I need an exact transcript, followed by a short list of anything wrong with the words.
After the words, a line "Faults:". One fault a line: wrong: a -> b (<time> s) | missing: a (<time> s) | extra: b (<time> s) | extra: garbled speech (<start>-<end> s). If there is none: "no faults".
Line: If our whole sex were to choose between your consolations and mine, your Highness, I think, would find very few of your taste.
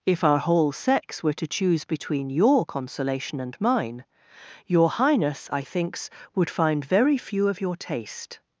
If our whole sex were to choose between your consolation and mine, your Highness, I thinks, would find very few of your taste.
Faults:
wrong: consolations -> consolation (2.6 s)
wrong: think -> thinks (5.6 s)